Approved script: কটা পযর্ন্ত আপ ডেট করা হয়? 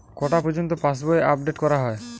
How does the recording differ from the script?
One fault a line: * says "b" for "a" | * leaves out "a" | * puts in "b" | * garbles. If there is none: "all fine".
* puts in "পাশবই"